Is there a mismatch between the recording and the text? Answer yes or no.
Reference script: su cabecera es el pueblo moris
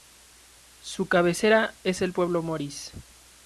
no